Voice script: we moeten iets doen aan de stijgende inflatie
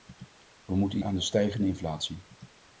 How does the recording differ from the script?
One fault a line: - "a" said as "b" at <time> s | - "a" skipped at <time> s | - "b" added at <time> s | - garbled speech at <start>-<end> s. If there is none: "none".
- "iets doen" skipped at 1.0 s